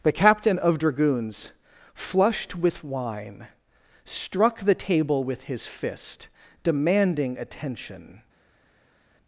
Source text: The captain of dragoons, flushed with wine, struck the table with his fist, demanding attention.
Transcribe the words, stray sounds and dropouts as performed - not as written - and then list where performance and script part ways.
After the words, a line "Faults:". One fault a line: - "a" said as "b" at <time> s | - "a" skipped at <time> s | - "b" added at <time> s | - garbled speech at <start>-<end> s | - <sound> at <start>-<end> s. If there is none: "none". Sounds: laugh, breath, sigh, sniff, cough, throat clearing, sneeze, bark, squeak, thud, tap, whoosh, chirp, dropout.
The captain of dragoons, flushed with wine, struck the table with his fist, demanding attention.
Faults:
none